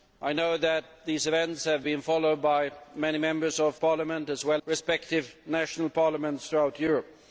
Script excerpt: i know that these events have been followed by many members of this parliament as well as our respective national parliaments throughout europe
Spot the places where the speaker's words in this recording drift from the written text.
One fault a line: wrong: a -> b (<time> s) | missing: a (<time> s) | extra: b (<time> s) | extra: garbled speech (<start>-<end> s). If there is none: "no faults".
missing: this (3.8 s)
missing: as our (4.6 s)